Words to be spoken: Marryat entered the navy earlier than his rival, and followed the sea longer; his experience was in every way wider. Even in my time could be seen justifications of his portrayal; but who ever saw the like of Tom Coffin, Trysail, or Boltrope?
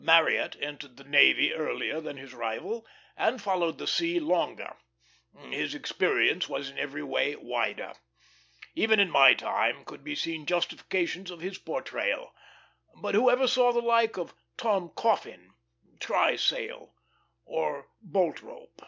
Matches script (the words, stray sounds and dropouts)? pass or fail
pass